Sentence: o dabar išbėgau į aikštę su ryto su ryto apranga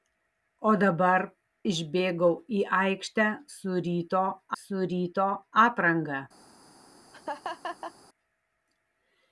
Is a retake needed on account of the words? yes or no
no